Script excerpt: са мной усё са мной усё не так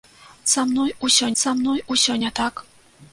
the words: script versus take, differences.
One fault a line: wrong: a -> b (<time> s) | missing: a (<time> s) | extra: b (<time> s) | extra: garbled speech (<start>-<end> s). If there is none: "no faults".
no faults